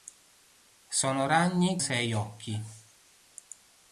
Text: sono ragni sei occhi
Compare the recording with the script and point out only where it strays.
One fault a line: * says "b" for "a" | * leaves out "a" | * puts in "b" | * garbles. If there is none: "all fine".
all fine